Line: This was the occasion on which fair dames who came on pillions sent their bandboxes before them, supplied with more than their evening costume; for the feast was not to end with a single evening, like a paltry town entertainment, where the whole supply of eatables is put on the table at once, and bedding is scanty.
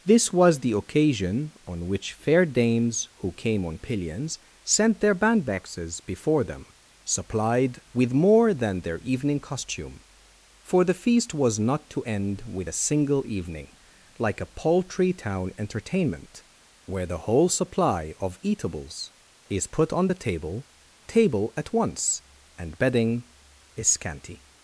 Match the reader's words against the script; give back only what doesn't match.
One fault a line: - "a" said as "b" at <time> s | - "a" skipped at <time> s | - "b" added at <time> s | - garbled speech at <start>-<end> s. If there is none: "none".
- "table" added at 21.1 s